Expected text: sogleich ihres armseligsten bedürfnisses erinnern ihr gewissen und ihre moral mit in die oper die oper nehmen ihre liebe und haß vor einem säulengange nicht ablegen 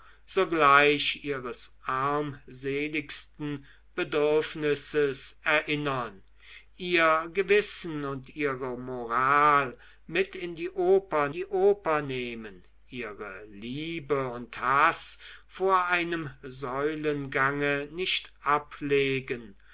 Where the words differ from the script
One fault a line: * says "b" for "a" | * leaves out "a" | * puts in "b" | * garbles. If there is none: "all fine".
all fine